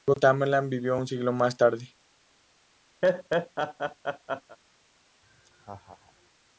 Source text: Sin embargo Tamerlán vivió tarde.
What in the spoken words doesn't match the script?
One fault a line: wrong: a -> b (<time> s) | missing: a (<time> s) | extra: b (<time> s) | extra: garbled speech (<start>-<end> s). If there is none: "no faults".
extra: un siglo más (1.0 s)